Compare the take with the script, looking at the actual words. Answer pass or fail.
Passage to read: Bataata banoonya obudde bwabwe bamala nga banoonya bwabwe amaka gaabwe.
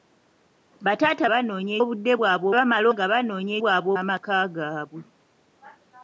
pass